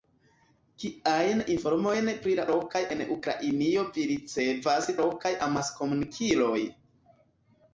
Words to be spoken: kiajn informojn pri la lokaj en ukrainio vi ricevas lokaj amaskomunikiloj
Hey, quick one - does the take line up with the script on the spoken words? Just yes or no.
yes